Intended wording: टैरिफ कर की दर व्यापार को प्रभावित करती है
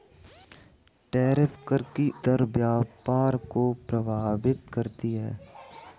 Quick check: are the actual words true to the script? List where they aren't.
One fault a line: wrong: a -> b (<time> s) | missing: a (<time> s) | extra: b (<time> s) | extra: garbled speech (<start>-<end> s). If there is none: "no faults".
no faults